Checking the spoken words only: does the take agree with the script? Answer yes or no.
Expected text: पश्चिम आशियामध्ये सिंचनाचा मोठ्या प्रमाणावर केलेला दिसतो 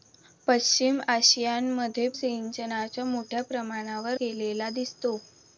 yes